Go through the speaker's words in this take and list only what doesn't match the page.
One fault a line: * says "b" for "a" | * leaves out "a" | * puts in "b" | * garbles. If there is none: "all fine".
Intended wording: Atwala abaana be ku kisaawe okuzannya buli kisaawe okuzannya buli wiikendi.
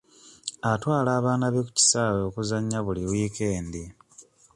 * leaves out "kisaawe okuzannya buli"